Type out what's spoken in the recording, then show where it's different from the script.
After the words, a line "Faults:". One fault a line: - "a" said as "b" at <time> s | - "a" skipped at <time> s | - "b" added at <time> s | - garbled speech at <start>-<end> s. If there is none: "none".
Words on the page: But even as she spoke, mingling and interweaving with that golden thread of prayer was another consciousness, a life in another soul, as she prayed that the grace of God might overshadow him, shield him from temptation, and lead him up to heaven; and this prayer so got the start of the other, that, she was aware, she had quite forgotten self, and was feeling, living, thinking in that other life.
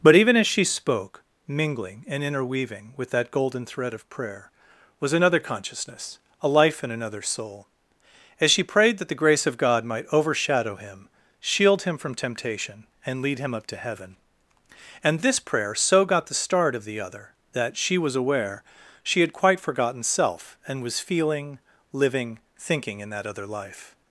But even as she spoke, mingling and interweaving with that golden thread of prayer was another consciousness, a life in another soul, as she prayed that the grace of God might overshadow him, shield him from temptation, and lead him up to heaven; and this prayer so got the start of the other, that, she was aware, she had quite forgotten self, and was feeling, living, thinking in that other life.
Faults:
none